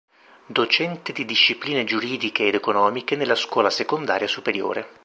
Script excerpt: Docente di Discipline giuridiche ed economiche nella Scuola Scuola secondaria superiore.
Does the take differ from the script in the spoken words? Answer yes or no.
yes